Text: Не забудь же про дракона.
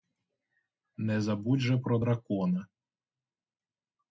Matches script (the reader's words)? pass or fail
pass